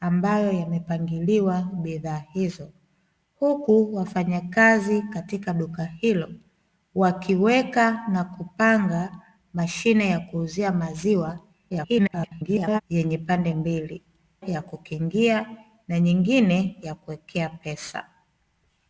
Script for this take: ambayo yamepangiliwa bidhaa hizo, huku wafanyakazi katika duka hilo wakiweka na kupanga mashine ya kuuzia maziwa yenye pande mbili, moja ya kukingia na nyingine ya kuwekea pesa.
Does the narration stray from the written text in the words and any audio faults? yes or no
yes